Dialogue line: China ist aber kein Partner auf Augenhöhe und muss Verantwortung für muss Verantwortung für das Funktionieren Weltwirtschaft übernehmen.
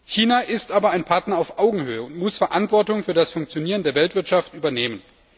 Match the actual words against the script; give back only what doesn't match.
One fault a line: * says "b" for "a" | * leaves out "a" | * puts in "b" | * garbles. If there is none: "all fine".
* says "ein" for "kein"
* leaves out "muss Verantwortung für"
* puts in "der"